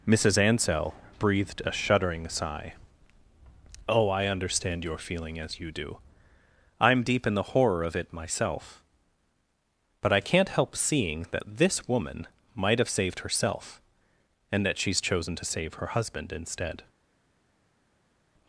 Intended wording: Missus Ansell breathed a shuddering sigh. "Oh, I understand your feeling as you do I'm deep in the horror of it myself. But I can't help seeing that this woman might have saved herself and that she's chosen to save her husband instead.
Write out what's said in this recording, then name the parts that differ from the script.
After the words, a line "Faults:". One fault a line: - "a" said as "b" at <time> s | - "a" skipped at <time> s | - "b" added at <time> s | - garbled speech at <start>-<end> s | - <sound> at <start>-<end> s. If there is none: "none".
Missus Ansell breathed a shuddering sigh. "Oh, I understand your feeling as you do I'm deep in the horror of it myself. But I can't help seeing that this woman might have saved herself and that she's chosen to save her husband instead.
Faults:
none